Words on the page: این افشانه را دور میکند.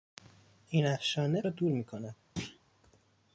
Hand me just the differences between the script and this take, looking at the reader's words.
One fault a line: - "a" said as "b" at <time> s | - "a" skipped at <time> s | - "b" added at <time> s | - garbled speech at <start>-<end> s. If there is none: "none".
none